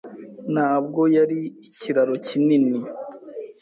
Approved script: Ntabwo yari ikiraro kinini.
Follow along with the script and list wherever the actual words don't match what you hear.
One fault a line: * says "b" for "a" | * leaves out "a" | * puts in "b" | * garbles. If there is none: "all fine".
all fine